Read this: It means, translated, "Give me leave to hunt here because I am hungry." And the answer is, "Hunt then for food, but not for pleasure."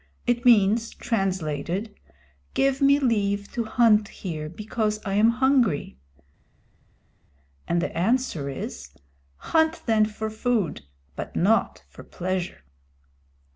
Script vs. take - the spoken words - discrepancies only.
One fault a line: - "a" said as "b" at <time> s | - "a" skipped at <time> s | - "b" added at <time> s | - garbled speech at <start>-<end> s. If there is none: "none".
none